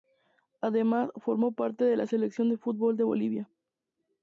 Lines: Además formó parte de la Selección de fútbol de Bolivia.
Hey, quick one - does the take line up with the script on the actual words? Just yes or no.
yes